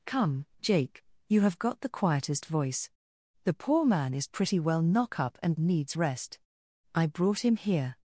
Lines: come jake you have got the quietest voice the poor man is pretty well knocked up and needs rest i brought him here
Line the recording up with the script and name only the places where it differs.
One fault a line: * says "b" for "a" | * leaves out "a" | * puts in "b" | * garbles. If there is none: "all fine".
* says "knock" for "knocked"